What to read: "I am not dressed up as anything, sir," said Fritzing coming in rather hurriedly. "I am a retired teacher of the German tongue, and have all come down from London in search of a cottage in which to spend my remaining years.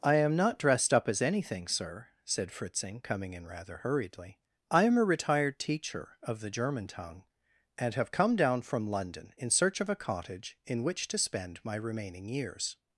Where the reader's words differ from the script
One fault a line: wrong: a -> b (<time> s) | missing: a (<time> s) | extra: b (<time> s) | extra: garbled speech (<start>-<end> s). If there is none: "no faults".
missing: all (8.1 s)